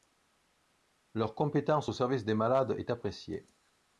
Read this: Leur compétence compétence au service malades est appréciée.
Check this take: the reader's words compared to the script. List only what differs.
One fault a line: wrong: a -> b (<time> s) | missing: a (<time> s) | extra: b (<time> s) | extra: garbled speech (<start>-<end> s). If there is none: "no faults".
missing: compétence (1.9 s)
extra: des (2.2 s)